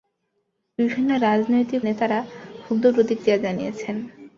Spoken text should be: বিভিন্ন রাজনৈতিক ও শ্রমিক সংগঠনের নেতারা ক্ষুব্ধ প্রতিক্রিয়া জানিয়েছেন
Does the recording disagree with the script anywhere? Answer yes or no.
yes